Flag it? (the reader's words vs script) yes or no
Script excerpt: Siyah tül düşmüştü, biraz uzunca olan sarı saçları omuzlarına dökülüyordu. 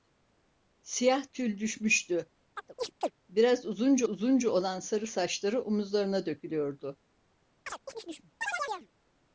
yes